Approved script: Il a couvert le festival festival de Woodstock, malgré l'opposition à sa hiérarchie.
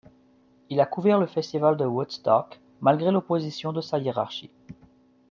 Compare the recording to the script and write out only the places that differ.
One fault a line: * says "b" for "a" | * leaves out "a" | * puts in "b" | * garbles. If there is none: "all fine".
* leaves out "festival"
* says "de" for "à"